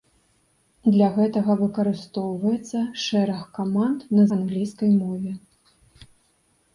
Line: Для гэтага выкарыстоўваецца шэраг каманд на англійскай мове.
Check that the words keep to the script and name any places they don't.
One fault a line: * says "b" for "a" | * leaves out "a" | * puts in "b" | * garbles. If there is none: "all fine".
all fine